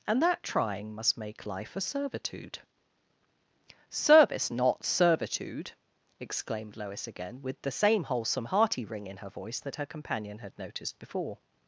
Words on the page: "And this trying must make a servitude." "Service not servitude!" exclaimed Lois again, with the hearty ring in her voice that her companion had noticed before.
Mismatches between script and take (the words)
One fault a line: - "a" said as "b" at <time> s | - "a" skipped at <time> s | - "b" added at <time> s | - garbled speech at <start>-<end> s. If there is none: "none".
- "this" said as "that" at 0.2 s
- "life" added at 1.4 s
- "same wholesome" added at 7.7 s